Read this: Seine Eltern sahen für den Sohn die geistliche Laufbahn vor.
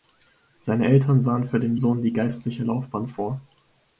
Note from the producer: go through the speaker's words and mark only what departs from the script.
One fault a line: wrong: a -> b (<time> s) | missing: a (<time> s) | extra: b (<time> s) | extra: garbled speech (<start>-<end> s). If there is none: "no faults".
no faults